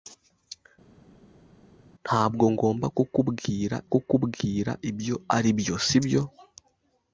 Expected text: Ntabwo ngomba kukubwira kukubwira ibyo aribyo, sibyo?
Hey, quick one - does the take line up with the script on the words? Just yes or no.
yes